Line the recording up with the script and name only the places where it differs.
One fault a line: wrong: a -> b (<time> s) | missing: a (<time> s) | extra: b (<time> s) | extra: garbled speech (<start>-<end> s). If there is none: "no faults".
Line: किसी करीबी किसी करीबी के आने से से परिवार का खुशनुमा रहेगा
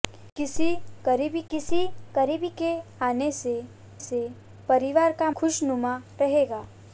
no faults